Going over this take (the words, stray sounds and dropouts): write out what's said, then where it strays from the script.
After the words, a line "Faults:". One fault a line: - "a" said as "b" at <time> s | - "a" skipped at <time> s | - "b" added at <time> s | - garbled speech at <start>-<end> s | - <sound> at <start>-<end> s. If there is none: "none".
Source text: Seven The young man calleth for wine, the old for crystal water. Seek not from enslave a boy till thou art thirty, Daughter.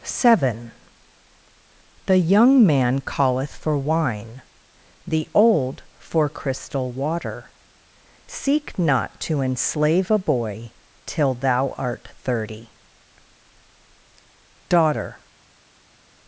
Seven The young man calleth for wine, the old for crystal water. Seek not to enslave a boy till thou art thirty, Daughter.
Faults:
- "from" said as "to" at 9.2 s